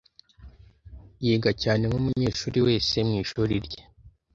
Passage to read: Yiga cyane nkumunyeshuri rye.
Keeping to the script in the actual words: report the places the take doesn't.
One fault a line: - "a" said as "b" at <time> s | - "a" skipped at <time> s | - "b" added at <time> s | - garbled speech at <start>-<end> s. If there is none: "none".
- "wese mwishuri" added at 2.6 s